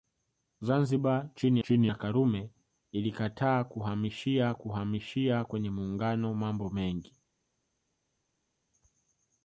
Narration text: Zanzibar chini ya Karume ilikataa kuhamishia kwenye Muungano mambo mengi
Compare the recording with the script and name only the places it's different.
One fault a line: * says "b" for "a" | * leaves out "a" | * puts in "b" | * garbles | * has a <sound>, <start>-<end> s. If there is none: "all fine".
* puts in "chini"
* puts in "kuhamishia"